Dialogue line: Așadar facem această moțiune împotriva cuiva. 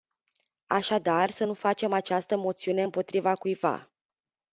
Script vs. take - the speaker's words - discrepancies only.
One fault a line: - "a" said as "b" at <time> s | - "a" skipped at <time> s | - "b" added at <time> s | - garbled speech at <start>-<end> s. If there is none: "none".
- "să nu" added at 1.3 s